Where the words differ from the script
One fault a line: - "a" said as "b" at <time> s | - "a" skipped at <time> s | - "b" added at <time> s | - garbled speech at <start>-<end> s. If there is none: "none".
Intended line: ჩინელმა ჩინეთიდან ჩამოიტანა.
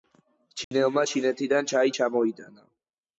- "ჩაი" added at 1.7 s